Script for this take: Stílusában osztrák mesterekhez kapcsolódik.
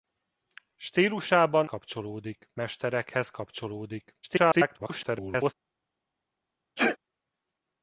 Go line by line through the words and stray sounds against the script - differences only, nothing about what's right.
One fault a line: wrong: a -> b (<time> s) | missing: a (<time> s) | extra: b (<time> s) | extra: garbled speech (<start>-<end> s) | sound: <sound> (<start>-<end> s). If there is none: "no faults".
wrong: osztrák -> kapcsolódik (1.6 s)
extra: garbled speech (4.2-5.5 s)
sound: sneeze (6.8-7.0 s)